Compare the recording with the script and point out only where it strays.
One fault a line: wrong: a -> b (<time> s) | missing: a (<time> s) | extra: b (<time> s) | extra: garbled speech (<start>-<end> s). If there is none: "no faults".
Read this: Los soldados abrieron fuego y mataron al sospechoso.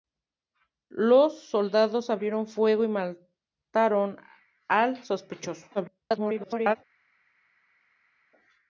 extra: garbled speech (5.7-6.8 s)